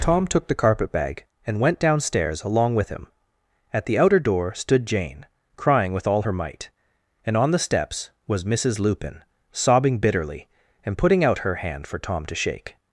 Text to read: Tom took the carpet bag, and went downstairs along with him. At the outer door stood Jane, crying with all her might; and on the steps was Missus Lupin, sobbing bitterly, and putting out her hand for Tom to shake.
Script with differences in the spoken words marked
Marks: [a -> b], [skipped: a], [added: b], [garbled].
Tom took the carpet bag, and went downstairs along with him. At the outer door stood Jane, crying with all her might; and on the steps was Missus Lupin, sobbing bitterly, and putting out her hand for Tom to shake.